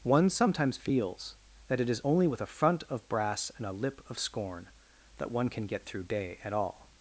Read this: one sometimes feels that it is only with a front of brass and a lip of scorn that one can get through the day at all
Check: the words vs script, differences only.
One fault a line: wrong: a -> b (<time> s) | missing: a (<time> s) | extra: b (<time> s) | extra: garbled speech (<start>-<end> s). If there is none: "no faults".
missing: the (6.0 s)